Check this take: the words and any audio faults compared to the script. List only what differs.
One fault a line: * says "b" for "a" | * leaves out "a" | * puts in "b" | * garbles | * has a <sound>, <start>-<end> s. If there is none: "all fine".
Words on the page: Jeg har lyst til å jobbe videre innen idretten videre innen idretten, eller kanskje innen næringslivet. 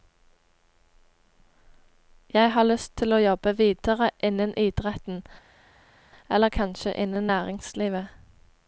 * leaves out "videre innen idretten"